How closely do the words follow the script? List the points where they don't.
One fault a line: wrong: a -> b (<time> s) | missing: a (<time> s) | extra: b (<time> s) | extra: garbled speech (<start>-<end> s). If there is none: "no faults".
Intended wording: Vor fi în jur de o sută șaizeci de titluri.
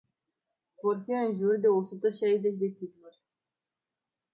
no faults